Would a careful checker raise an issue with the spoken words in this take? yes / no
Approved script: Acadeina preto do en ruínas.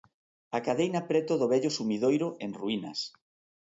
yes